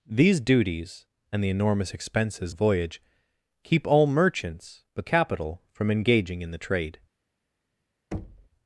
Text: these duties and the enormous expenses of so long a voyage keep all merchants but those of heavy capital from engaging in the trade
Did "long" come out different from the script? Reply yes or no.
yes